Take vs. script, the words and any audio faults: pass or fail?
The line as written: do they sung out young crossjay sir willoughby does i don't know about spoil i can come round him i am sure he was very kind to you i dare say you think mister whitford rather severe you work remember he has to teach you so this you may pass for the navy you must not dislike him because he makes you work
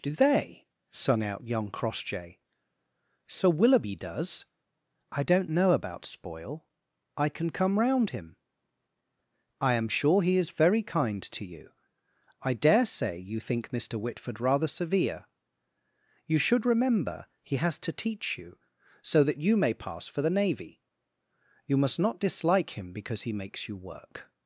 fail